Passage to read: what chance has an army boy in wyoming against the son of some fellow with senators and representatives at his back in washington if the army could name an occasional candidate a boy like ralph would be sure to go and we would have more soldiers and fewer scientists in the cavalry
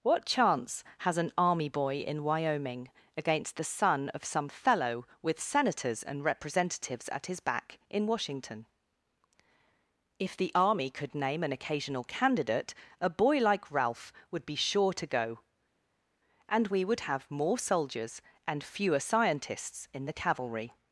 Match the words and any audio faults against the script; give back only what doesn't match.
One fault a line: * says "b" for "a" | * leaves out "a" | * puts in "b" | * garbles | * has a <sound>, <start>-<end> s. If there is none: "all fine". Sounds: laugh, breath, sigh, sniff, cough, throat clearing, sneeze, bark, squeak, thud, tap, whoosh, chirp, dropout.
all fine